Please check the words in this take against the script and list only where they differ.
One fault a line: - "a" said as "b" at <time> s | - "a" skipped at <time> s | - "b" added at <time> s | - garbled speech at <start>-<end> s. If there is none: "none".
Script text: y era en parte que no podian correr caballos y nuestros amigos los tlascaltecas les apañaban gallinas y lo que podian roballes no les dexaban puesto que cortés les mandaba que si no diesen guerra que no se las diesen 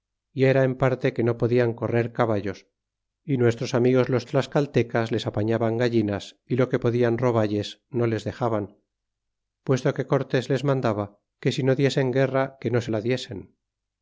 - "las" said as "la" at 12.9 s